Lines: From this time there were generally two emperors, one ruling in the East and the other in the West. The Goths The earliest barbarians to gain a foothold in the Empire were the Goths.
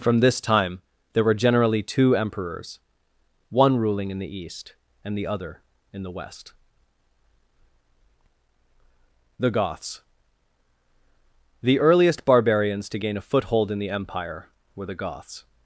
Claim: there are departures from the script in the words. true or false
false